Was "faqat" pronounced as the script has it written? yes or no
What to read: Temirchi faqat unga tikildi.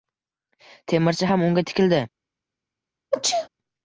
no